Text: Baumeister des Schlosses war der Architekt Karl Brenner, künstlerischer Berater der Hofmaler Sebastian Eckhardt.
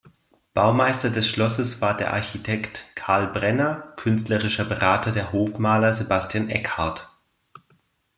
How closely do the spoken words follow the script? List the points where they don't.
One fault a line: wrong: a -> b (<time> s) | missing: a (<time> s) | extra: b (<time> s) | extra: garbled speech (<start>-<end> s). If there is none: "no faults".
no faults